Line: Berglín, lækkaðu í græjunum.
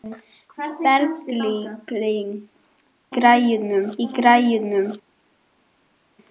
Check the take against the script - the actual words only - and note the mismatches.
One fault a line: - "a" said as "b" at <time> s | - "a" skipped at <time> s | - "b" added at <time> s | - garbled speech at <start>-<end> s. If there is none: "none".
- "lækkaðu" said as "græjunum" at 3.2 s